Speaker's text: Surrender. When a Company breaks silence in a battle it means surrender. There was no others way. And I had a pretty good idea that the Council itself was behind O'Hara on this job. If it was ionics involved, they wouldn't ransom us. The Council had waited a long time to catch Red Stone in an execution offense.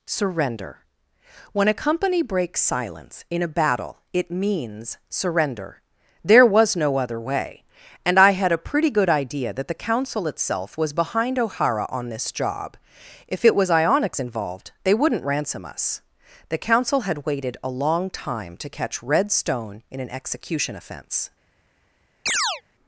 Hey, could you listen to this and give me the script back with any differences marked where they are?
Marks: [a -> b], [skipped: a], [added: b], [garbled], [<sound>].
Surrender. When a Company breaks silence in a battle it means surrender. There was no [others -> other] way. And I had a pretty good idea that the Council itself was behind O'Hara on this job. If it was ionics involved, they wouldn't ransom us. The Council had waited a long time to catch Red Stone in an execution offense. [chirp]